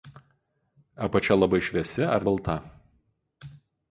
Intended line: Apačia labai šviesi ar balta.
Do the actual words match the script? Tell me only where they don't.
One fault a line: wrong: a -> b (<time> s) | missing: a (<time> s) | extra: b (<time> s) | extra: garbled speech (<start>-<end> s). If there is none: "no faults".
no faults